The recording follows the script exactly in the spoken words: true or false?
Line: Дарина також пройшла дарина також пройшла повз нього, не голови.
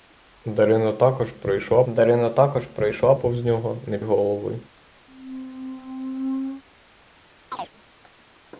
true